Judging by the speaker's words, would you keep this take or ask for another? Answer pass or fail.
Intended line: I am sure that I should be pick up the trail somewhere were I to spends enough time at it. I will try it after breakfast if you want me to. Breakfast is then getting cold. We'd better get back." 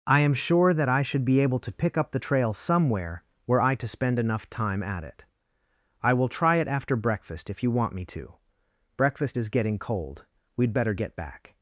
fail